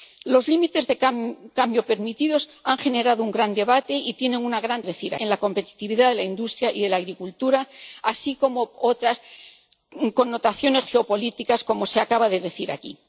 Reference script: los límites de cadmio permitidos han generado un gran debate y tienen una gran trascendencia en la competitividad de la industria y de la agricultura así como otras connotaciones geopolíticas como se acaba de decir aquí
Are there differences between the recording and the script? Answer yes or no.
yes